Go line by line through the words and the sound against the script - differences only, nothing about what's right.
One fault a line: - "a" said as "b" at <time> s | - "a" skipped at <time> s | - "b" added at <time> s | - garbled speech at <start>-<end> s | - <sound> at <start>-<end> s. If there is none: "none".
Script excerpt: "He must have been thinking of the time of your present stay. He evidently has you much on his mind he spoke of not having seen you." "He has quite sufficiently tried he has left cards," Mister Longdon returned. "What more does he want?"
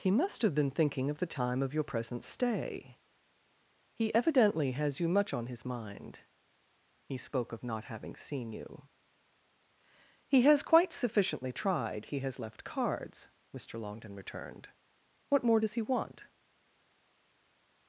none